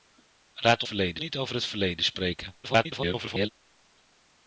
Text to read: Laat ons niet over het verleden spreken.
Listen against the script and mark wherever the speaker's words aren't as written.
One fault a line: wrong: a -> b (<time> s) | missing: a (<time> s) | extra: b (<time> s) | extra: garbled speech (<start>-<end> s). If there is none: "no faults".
wrong: ons -> verleden (0.8 s)
extra: garbled speech (2.6-3.5 s)